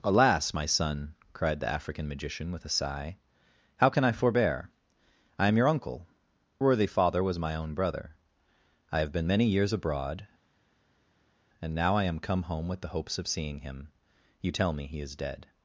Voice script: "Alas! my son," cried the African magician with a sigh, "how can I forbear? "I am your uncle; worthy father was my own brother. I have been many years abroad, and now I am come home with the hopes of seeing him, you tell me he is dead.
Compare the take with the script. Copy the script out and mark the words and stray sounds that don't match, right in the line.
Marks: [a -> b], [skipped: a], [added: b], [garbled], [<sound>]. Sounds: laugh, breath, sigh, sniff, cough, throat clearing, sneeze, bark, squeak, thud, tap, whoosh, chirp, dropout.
"Alas! my son," cried the African magician with a sigh, "how can I forbear? "I am your uncle; worthy father was my own brother. I have been many years abroad, and now I am come home with the hopes of seeing him, you tell me he is dead.